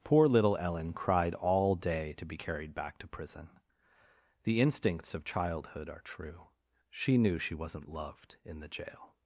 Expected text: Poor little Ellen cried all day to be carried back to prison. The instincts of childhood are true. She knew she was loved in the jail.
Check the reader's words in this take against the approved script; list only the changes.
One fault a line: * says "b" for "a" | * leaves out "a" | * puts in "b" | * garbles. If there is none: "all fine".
* says "wasn't" for "was"